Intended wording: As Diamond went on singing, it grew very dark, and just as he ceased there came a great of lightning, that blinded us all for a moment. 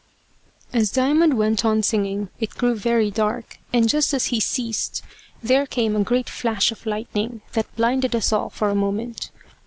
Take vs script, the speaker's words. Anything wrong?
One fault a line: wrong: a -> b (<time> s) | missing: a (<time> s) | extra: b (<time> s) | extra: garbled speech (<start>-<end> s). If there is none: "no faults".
extra: flash (6.3 s)